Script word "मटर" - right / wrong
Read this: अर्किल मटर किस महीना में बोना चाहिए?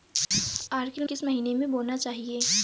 wrong